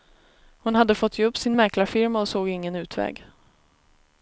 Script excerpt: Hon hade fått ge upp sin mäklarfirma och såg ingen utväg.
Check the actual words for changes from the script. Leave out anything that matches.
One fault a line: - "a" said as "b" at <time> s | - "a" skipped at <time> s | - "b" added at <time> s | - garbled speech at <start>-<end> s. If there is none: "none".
none